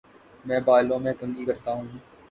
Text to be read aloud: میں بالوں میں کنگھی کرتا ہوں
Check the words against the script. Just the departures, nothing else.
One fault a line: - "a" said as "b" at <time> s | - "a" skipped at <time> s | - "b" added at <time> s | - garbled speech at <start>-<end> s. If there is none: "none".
none